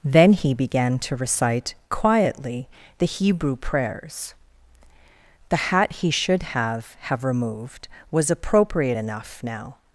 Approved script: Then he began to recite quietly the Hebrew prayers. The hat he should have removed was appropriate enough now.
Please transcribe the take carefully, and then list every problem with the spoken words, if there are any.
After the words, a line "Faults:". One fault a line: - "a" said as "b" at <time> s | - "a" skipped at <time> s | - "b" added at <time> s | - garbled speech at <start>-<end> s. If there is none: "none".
Then he began to recite quietly the Hebrew prayers. The hat he should have have removed was appropriate enough now.
Faults:
- "have" added at 7.0 s